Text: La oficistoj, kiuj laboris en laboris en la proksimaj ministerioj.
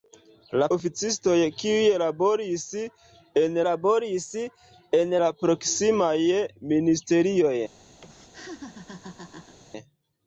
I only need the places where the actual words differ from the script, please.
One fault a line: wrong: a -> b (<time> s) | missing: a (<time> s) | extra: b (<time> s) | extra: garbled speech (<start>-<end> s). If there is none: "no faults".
no faults